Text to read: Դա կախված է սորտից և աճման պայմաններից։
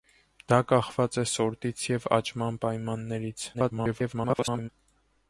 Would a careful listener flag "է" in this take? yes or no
no